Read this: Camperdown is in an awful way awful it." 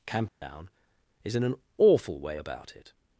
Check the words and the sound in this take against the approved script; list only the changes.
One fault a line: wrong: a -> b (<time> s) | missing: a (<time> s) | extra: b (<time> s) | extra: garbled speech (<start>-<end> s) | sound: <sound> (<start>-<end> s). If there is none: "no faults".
sound: dropout (0.3-0.4 s)
wrong: awful -> about (2.4 s)